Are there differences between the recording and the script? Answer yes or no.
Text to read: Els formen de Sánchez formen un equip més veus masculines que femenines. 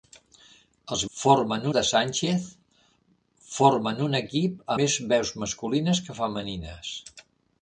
no